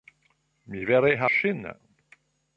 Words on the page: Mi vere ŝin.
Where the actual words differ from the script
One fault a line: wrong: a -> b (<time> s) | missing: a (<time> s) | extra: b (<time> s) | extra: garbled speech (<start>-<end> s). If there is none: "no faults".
no faults